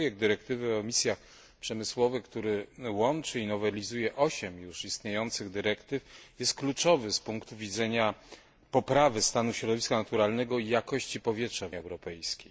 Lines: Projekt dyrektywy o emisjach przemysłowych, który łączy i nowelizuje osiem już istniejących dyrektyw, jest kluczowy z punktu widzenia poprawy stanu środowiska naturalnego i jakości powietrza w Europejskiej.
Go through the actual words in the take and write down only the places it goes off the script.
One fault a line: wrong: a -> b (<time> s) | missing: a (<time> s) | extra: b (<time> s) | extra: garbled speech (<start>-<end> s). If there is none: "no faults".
no faults